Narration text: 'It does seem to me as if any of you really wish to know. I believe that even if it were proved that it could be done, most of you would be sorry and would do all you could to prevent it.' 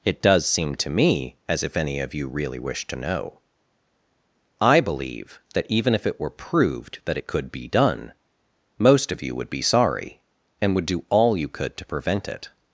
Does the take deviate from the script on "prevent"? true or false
false